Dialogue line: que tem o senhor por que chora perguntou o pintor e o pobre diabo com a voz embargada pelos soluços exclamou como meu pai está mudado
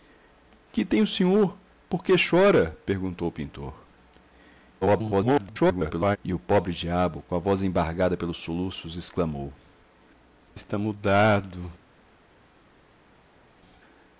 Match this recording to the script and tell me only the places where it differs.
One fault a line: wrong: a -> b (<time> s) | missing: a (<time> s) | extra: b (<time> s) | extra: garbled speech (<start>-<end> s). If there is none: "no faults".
extra: garbled speech (4.8-6.2 s)
missing: como meu pai (9.5 s)